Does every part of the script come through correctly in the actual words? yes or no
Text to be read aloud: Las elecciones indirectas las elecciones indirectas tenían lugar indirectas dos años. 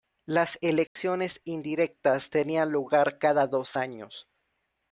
no